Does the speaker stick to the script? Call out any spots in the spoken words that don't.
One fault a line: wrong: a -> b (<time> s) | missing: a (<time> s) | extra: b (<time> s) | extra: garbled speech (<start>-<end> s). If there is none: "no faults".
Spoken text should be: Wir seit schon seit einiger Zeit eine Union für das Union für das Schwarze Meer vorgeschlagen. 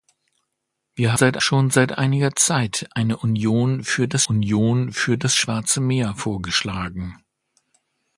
no faults